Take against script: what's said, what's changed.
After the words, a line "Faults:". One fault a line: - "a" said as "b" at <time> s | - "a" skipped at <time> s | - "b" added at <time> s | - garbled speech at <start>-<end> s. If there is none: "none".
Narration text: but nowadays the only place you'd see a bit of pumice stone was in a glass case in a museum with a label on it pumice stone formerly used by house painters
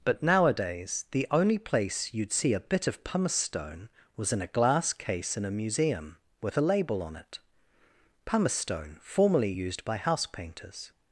but nowadays the only place you'd see a bit of pumice stone was in a glass case in a museum with a label on it pumice stone formerly used by house painters
Faults:
none